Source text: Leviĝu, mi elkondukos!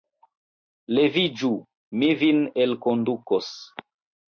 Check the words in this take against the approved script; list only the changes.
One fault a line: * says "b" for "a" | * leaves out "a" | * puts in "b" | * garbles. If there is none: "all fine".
* puts in "vin"